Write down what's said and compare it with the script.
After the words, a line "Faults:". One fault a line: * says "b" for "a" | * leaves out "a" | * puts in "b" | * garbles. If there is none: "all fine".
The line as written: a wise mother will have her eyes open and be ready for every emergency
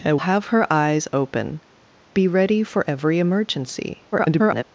a have her eyes open be ready for every emergency [garbled]
Faults:
* leaves out "wise mother will"
* leaves out "and"
* garbles